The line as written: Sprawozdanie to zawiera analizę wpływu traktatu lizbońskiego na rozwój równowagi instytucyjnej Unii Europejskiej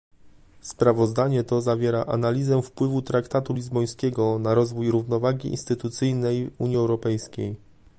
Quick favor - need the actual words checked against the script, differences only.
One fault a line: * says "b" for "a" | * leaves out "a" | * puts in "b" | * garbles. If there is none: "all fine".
all fine